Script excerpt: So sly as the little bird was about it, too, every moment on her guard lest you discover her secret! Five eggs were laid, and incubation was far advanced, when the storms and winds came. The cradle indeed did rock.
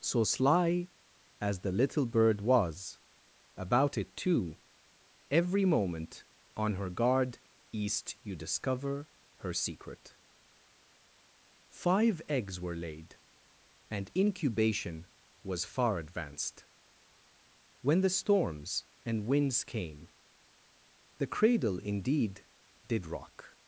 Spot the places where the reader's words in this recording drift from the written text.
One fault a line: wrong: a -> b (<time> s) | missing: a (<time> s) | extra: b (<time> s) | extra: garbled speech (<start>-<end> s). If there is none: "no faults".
wrong: lest -> east (7.7 s)